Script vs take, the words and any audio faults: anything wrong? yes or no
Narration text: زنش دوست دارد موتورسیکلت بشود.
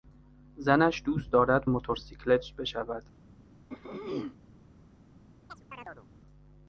yes